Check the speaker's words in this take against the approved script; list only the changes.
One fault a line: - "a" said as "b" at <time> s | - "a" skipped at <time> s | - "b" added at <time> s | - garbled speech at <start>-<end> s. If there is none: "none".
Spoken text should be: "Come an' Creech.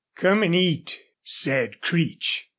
- "eat said" added at 0.6 s